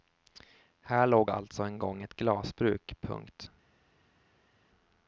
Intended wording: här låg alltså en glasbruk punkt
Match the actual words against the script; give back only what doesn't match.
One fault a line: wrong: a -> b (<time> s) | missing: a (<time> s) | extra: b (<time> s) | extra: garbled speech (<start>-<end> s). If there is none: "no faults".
extra: gång ett (1.8 s)